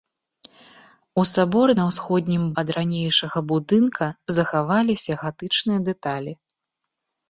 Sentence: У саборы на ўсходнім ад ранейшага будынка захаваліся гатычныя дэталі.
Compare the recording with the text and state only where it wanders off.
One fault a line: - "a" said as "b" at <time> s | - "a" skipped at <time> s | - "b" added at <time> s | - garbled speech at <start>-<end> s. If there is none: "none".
none